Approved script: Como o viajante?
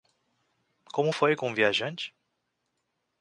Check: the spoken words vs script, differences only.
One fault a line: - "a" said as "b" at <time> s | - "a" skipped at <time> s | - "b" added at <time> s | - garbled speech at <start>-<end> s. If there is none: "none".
- "foi com" added at 1.1 s